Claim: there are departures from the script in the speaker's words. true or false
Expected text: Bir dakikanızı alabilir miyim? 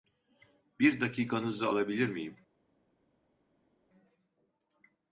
false